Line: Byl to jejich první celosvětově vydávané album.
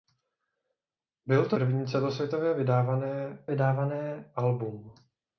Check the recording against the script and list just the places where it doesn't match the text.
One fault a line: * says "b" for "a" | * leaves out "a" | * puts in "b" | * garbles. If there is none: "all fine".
* leaves out "jejich"
* puts in "vydávané"